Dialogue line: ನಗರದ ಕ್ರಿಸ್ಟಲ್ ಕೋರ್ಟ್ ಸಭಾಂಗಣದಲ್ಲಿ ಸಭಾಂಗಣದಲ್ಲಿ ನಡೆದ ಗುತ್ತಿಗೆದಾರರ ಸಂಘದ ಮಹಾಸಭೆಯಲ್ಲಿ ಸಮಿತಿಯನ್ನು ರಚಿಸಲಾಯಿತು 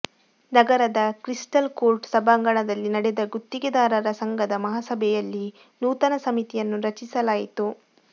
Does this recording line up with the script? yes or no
no